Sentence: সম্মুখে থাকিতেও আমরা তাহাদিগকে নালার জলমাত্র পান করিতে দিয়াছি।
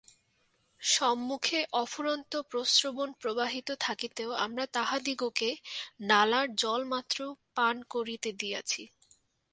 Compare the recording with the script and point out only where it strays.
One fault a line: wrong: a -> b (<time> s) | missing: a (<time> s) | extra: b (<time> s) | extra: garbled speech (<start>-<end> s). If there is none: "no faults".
extra: অফুরন্ত প্রস্রবণ প্রবাহিত (1.7 s)